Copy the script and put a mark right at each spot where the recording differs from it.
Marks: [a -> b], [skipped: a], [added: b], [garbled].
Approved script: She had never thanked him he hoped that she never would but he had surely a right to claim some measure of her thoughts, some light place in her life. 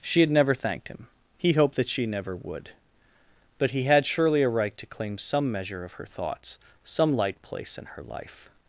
She had never thanked him he hoped that she never would but he had surely a right to claim some measure of her thoughts, some light place in her life.